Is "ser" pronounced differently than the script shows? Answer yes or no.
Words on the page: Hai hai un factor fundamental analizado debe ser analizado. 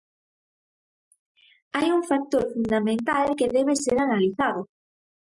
no